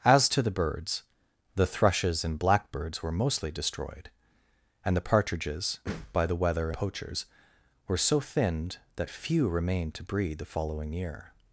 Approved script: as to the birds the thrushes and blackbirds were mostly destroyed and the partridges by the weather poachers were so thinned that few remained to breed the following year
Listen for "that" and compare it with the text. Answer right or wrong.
right